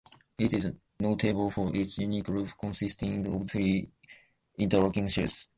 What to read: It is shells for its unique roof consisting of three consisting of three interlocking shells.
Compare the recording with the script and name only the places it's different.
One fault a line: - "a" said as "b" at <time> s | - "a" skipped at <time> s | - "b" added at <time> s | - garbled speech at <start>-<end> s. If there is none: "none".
- "shells" said as "notable" at 1.0 s
- "consisting of three" skipped at 3.9 s